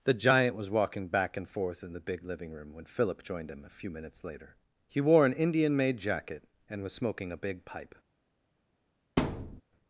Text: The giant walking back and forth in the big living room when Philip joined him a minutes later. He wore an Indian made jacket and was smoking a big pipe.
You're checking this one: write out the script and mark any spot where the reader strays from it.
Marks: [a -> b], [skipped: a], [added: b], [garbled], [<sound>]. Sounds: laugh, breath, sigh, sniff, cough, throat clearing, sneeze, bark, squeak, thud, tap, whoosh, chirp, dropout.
The giant [added: was] walking back and forth in the big living room when Philip joined him a [added: few] minutes later. He wore an Indian made jacket and was smoking a big pipe. [thud]